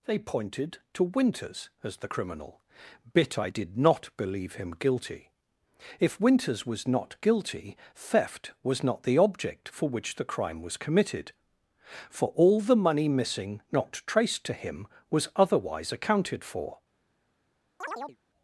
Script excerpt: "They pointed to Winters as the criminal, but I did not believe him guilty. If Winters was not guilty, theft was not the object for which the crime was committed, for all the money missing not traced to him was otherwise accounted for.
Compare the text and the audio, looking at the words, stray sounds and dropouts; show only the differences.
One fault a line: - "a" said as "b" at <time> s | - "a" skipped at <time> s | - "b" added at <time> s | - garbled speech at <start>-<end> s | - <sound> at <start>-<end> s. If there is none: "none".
- "but" said as "bit" at 3.1 s
- chirp at 17.8-18.2 s